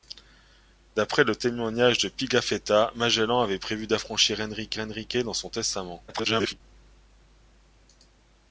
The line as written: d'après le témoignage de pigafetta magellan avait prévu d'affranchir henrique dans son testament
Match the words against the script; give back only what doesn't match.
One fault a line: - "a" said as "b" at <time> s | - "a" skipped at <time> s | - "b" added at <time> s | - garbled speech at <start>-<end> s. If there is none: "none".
- "henrique" added at 4.8 s
- garbled speech at 6.1-6.6 s